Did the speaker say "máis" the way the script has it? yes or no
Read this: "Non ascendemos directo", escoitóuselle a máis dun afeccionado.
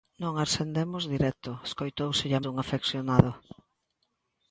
no